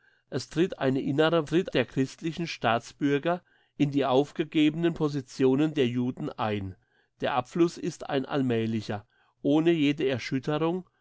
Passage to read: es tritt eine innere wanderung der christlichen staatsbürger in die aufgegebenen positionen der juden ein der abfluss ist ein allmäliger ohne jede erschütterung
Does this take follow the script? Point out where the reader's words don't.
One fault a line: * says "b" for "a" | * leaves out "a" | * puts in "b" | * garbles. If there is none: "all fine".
* says "tritt" for "wanderung"